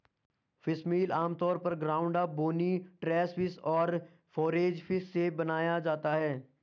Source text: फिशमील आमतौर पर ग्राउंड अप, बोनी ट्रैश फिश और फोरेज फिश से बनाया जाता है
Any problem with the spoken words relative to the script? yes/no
no